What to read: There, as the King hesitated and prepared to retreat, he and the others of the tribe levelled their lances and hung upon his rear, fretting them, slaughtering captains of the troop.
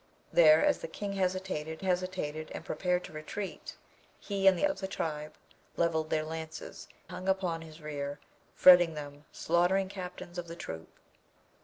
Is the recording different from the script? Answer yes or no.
yes